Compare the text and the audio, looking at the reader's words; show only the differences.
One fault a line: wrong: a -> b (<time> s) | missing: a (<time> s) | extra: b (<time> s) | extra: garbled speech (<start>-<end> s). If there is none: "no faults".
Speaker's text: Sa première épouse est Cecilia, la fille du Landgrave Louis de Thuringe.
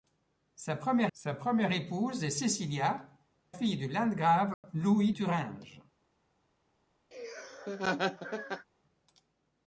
extra: sa première (1.1 s)
missing: la (3.1 s)
missing: de (5.1 s)